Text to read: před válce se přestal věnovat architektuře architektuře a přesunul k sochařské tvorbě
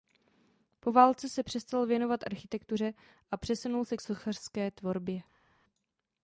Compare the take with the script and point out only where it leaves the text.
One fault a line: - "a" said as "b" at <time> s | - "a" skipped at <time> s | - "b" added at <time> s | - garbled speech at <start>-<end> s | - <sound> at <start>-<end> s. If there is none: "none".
- "před" said as "po" at 0.8 s
- "architektuře" skipped at 2.9 s
- "se" added at 3.8 s